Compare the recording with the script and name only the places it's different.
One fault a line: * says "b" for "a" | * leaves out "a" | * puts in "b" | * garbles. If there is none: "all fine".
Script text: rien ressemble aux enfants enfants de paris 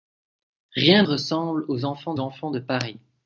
all fine